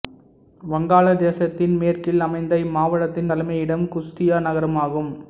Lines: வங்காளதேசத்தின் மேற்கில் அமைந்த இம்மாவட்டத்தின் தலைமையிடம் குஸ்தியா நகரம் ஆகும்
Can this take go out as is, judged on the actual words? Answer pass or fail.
pass